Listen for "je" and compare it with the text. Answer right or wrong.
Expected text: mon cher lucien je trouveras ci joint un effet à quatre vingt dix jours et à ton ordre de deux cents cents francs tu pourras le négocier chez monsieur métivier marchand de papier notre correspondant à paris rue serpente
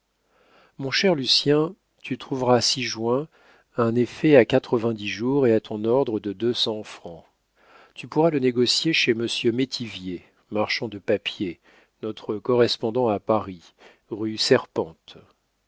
wrong